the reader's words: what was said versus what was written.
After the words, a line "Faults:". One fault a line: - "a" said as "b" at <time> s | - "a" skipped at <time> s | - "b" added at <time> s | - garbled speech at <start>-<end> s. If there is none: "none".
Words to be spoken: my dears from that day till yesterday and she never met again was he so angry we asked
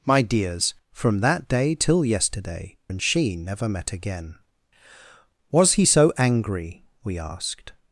my dears from that day till yesterday and she never met again was he so angry we asked
Faults:
none